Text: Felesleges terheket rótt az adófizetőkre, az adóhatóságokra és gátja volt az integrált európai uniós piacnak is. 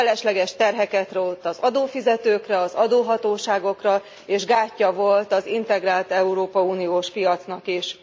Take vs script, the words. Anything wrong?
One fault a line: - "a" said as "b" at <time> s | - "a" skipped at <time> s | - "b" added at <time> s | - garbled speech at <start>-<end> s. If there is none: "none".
none